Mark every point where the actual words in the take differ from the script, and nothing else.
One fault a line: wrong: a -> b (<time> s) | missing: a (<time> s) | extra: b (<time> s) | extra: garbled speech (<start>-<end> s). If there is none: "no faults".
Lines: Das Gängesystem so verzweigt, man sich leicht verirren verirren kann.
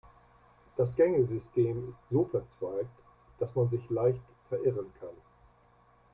extra: ist (1.9 s)
extra: dass (3.4 s)
missing: verirren (4.9 s)